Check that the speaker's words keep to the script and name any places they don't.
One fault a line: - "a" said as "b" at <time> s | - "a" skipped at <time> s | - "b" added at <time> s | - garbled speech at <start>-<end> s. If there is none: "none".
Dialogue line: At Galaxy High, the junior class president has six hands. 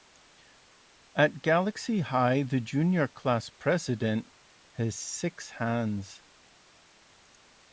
none